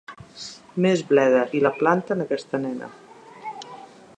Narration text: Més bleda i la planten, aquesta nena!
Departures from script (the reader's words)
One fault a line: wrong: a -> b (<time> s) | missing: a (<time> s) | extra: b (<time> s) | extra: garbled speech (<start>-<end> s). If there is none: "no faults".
no faults